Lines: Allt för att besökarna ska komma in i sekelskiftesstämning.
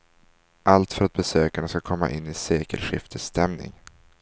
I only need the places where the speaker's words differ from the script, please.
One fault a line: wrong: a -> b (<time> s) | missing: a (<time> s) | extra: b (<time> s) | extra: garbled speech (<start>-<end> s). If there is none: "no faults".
no faults